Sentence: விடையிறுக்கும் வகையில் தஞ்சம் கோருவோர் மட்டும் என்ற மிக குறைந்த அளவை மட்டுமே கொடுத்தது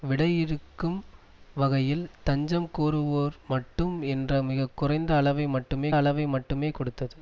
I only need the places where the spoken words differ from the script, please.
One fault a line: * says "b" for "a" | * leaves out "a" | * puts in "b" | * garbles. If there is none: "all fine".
* puts in "அளவை மட்டுமே"